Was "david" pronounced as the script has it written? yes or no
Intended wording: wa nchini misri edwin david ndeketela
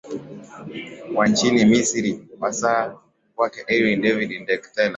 yes